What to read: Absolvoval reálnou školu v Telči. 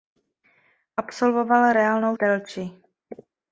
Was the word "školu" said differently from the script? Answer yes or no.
yes